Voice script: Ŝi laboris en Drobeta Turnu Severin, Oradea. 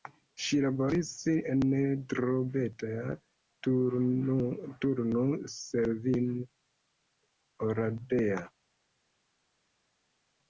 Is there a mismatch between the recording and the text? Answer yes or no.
no